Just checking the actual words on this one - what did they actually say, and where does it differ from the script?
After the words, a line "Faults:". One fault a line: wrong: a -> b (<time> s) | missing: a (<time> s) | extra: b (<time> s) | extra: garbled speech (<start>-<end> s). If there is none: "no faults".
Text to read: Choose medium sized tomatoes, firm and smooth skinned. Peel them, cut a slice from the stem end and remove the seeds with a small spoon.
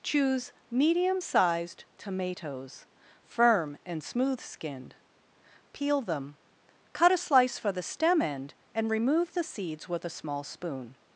Choose medium sized tomatoes, firm and smooth skinned. Peel them, cut a slice for the stem end and remove the seeds with a small spoon.
Faults:
wrong: from -> for (7.6 s)